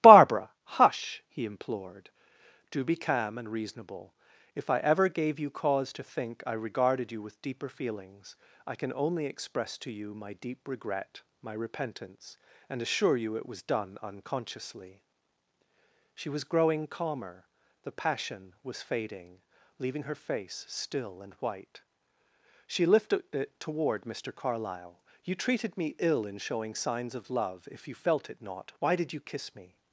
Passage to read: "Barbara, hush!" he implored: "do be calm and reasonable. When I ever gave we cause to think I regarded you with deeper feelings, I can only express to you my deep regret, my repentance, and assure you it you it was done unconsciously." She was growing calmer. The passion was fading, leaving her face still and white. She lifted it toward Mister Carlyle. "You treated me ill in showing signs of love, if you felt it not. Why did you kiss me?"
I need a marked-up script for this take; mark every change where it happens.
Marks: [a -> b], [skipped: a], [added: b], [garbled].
"Barbara, hush!" he implored: "do be calm and reasonable. [When -> If] I ever gave [we -> you] cause to think I regarded you with deeper feelings, I can only express to you my deep regret, my repentance, and assure you it [skipped: you it] was done unconsciously." She was growing calmer. The passion was fading, leaving her face still and white. She lifted it toward Mister Carlyle. "You treated me ill in showing signs of love, if you felt it not. Why did you kiss me?"